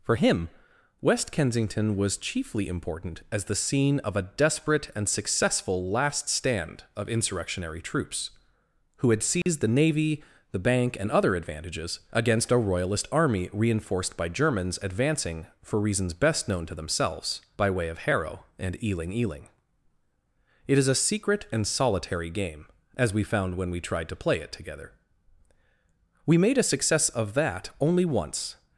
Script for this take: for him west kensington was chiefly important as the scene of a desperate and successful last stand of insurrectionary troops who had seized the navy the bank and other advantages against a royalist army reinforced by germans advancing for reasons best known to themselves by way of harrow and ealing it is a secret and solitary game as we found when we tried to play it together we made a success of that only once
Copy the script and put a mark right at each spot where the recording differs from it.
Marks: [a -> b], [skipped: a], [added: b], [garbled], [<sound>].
for him west kensington was chiefly important as the scene of a desperate and successful last stand of insurrectionary troops who had seized [dropout] the navy the bank and other advantages against a royalist army reinforced by germans advancing for reasons best known to themselves by way of harrow and ealing [added: ealing] it is a secret and solitary game as we found when we tried to play it together we made a success of that only once